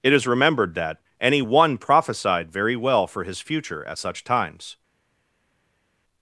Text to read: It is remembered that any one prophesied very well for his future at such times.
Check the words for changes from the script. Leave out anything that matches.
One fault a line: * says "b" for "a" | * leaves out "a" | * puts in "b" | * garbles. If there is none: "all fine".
all fine